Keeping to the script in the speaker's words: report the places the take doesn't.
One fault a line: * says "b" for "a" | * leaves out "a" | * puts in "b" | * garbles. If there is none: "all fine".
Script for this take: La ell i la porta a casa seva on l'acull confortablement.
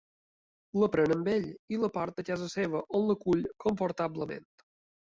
* puts in "pren amb"